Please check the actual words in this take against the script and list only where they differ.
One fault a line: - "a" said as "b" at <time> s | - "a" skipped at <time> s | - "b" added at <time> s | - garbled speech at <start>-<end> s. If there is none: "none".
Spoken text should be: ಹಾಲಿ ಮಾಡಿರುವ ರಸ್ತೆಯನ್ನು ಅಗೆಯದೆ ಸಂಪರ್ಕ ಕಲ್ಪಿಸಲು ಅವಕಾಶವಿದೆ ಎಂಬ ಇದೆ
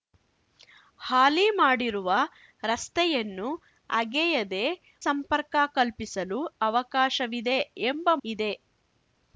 none